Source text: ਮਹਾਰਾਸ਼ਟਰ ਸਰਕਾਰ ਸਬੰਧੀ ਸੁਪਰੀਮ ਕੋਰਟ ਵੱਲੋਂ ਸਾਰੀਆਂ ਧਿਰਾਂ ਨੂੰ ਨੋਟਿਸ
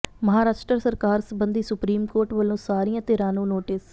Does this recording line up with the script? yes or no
yes